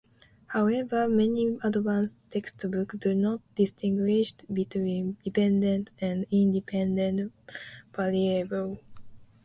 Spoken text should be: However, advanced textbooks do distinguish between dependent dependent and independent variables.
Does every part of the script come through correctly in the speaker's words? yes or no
no